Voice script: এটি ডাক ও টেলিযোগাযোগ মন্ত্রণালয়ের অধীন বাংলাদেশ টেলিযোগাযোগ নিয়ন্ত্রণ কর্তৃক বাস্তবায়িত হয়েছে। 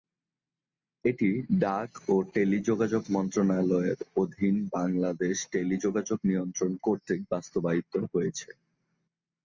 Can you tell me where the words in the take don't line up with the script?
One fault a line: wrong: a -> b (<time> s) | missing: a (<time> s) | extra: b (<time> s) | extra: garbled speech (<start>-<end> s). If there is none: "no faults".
no faults